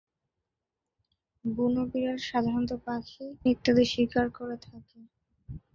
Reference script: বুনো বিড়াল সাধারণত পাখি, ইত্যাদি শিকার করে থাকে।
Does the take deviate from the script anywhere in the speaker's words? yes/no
no